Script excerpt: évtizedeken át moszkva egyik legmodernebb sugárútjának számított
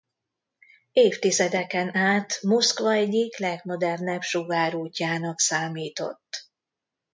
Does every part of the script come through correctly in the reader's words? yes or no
yes